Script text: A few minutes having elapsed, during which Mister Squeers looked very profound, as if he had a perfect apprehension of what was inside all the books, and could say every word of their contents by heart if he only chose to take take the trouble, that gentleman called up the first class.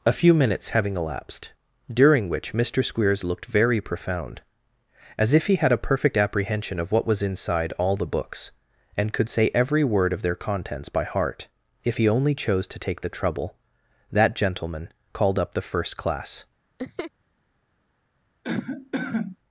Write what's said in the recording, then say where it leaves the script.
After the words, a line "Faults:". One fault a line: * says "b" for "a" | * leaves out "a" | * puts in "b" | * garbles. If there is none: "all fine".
A few minutes having elapsed, during which Mister Squeers looked very profound, as if he had a perfect apprehension of what was inside all the books, and could say every word of their contents by heart if he only chose to take the trouble, that gentleman called up the first class.
Faults:
* leaves out "take"